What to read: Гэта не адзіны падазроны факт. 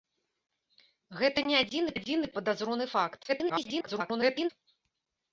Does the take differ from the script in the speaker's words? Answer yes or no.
yes